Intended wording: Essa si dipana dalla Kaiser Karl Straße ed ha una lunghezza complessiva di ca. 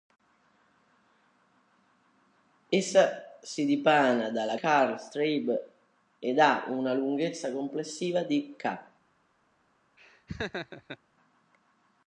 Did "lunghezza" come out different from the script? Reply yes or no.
no